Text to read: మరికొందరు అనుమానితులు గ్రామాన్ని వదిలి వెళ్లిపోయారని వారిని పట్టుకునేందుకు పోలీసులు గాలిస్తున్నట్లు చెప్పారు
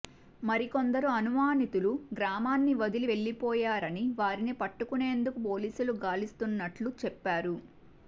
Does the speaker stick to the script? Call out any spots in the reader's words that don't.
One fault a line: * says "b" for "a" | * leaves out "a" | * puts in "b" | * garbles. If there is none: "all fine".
all fine